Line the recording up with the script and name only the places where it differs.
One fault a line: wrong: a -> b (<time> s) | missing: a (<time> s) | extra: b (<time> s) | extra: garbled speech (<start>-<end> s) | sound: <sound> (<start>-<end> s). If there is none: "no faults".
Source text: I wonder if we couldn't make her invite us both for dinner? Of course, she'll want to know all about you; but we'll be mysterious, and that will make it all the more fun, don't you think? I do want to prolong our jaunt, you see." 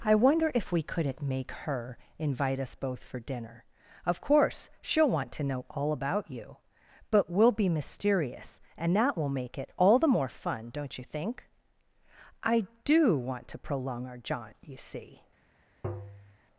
sound: tap (15.8-16.4 s)